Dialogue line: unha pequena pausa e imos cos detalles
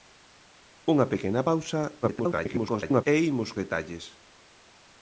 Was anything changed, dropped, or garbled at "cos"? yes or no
yes